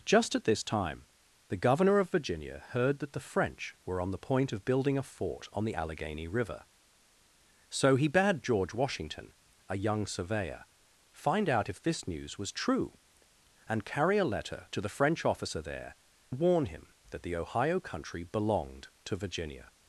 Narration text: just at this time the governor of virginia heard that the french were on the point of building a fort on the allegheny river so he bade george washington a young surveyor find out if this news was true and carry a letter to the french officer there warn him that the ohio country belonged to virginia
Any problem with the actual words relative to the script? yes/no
no